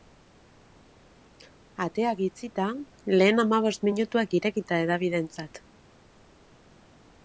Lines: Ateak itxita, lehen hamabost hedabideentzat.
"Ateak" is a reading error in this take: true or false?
false